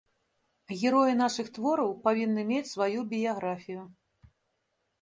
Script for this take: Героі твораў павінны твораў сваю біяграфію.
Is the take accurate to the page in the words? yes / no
no